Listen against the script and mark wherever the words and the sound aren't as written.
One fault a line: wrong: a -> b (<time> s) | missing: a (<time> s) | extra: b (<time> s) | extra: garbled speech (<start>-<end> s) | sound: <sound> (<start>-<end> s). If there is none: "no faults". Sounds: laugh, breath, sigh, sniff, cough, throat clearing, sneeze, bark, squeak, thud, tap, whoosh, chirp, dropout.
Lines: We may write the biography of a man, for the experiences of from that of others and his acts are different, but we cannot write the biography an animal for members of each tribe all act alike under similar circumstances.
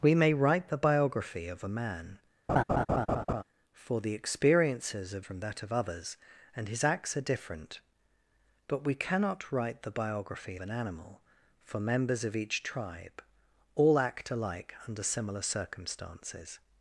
sound: laugh (2.5-3.4 s)